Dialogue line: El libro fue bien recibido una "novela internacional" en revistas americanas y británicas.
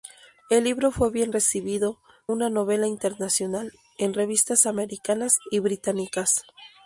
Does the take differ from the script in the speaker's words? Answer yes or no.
no